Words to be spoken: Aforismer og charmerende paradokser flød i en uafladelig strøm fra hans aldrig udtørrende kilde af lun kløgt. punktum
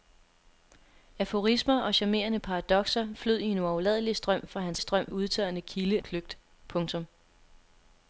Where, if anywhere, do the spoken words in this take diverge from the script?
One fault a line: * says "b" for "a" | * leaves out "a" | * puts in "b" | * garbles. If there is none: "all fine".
* says "strøm" for "aldrig"
* leaves out "af lun"